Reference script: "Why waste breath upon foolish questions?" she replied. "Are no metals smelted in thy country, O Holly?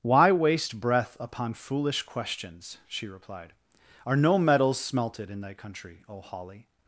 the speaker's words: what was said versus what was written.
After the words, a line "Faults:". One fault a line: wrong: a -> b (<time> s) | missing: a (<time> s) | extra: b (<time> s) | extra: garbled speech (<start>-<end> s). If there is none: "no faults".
"Why waste breath upon foolish questions?" she replied. "Are no metals smelted in thy country, O Holly?
Faults:
no faults